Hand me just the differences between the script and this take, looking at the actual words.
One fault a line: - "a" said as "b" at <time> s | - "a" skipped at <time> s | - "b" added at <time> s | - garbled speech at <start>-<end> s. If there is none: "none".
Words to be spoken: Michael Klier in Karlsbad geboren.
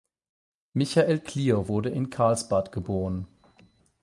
- "wurde" added at 1.7 s